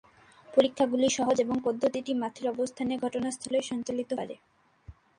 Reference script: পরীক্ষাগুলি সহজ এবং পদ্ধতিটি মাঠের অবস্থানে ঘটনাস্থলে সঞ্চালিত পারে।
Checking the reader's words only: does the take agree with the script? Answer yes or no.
yes